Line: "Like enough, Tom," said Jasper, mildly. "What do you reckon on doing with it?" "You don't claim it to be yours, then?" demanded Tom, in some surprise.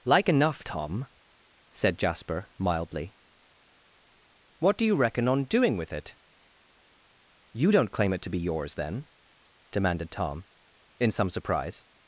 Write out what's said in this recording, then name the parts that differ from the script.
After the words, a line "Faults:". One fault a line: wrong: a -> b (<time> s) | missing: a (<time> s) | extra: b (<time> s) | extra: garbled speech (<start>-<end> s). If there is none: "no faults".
"Like enough, Tom," said Jasper, mildly. "What do you reckon on doing with it?" "You don't claim it to be yours, then?" demanded Tom, in some surprise.
Faults:
no faults